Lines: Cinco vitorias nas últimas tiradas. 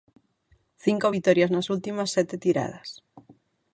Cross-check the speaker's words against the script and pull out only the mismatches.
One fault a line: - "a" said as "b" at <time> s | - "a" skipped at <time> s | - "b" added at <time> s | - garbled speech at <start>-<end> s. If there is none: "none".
- "sete" added at 2.2 s